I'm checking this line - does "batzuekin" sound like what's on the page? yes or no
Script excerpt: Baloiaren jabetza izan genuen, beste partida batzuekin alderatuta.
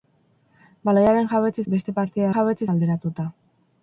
no